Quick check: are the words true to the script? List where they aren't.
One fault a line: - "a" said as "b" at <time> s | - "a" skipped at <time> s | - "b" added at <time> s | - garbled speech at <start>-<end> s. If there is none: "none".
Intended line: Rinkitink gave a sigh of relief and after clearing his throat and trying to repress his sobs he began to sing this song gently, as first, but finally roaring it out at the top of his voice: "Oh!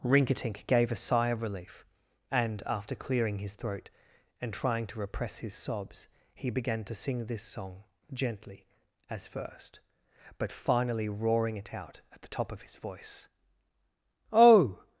none